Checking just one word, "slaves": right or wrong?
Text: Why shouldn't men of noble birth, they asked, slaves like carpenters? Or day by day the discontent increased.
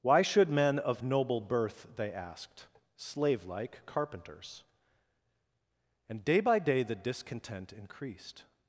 wrong